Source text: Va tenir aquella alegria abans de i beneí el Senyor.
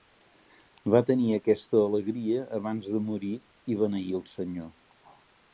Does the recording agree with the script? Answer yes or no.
no